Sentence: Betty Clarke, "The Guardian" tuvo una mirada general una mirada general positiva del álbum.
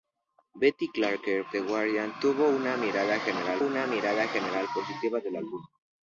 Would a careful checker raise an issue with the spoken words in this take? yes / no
no